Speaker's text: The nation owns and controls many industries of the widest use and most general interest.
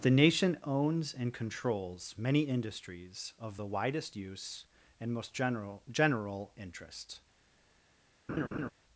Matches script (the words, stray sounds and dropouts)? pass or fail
fail